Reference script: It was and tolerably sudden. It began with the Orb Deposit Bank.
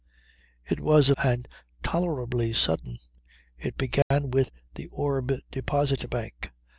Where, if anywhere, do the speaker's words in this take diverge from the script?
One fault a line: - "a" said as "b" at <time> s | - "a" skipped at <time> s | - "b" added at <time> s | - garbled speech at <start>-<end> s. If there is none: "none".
none